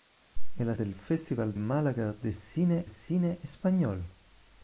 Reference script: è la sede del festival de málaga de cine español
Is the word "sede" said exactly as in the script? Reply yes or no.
no